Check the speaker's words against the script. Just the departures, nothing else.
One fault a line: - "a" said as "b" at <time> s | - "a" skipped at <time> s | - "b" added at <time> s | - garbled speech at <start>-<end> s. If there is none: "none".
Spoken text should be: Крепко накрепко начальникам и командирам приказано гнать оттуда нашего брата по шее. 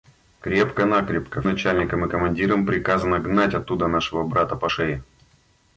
none